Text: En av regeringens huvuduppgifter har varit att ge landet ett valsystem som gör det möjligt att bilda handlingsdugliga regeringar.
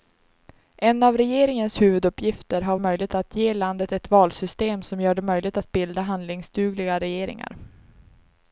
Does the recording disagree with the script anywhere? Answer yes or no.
yes